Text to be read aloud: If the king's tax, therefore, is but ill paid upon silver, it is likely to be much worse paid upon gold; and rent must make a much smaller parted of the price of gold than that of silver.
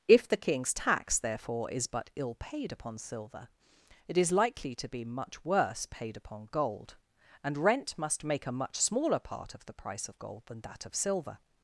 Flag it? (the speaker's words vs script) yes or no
yes